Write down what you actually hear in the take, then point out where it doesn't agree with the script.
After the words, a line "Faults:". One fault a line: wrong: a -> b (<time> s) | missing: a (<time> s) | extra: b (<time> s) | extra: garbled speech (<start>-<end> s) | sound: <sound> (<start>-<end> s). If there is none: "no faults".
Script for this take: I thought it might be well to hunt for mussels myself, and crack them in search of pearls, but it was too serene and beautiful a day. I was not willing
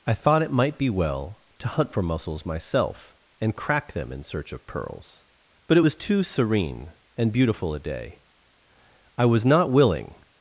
I thought it might be well to hunt for mussels myself, and crack them in search of pearls, but it was too serene and beautiful a day. I was not willing
Faults:
no faults